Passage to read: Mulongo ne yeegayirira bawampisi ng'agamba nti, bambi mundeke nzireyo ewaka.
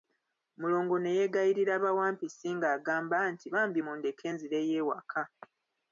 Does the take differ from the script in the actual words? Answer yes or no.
no